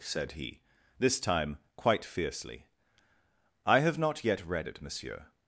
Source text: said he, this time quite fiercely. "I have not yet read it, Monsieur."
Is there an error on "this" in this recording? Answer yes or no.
no